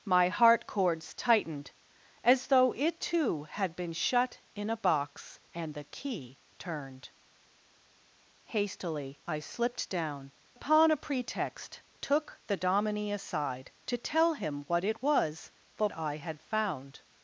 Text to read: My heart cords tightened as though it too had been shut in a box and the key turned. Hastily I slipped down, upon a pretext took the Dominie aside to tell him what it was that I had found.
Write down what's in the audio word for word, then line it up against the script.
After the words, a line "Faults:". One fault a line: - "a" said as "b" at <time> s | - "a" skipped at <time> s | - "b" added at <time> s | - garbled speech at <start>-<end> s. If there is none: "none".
My heart cords tightened as though it too had been shut in a box and the key turned. Hastily I slipped down, upon a pretext took the Dominie aside to tell him what it was that I had found.
Faults:
none